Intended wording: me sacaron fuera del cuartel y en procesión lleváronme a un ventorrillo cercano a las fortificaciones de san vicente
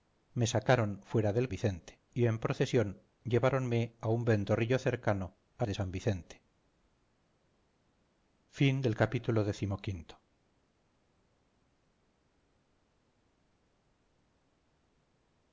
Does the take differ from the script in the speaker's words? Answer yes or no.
yes